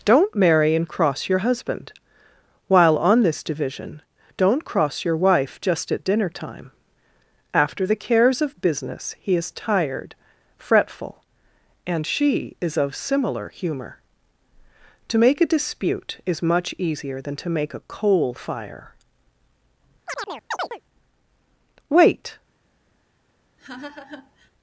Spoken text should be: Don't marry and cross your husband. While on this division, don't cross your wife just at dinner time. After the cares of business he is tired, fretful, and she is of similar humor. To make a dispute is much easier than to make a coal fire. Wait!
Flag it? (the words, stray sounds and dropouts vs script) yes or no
yes